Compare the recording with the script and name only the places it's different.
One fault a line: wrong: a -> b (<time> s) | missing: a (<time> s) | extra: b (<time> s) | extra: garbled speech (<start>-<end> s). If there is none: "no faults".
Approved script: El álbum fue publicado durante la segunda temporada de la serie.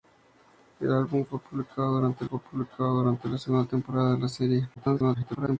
extra: fue publicado durante (2.2 s)
extra: garbled speech (4.8-5.6 s)